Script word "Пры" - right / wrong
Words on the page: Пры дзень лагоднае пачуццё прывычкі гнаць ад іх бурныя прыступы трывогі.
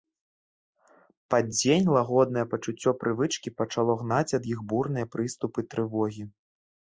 wrong